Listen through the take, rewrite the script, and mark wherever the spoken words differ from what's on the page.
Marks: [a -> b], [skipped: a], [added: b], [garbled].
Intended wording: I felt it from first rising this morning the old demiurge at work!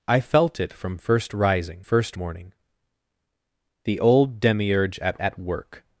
I felt it from first rising [this -> first] morning the old demiurge at [added: at] work!